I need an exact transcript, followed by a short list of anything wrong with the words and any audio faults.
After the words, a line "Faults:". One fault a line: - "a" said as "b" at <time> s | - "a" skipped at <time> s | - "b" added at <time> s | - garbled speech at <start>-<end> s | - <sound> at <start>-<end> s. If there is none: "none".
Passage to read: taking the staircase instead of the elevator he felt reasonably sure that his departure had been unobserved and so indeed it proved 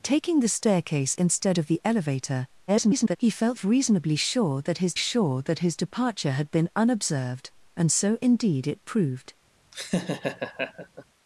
taking the staircase instead of the elevator [garbled] he felt reasonably sure that his sure that his departure had been unobserved and so indeed it proved
Faults:
- garbled speech at 2.7-3.2 s
- "sure that his" added at 4.9 s
- laugh at 9.7-11.0 s